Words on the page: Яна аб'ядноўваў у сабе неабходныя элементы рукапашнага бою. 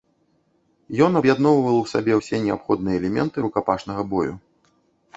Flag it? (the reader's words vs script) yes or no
yes